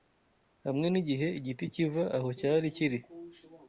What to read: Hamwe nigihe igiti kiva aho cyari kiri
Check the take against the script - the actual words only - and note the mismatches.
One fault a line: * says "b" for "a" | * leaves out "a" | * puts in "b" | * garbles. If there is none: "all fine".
all fine